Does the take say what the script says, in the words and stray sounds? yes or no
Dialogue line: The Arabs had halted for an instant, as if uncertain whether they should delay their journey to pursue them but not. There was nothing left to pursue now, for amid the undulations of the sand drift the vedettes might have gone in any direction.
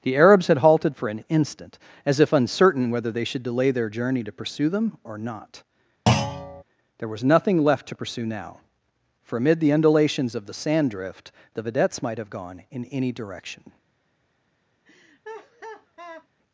no